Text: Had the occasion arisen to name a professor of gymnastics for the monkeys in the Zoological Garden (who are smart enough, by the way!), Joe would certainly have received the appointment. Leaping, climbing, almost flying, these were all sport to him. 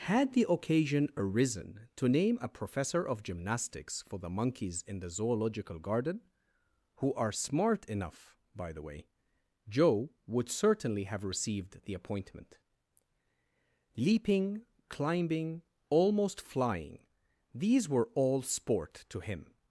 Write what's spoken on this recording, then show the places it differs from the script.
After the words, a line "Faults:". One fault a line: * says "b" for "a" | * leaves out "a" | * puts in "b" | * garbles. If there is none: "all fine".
Had the occasion arisen to name a professor of gymnastics for the monkeys in the Zoological Garden (who are smart enough, by the way!), Joe would certainly have received the appointment. Leaping, climbing, almost flying, these were all sport to him.
Faults:
all fine